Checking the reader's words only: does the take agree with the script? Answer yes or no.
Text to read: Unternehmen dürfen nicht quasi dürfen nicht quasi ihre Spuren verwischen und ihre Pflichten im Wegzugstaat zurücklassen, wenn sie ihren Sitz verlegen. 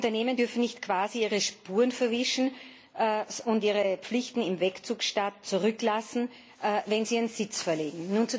no